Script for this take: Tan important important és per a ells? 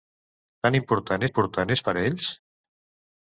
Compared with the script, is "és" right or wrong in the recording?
right